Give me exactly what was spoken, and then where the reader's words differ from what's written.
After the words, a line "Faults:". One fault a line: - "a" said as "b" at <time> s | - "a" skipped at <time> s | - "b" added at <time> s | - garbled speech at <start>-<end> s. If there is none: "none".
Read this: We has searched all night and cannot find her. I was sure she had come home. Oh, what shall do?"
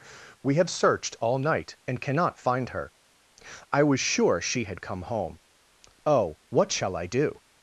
We have searched all night and cannot find her. I was sure she had come home. Oh, what shall I do?"
Faults:
- "has" said as "have" at 0.6 s
- "I" added at 6.9 s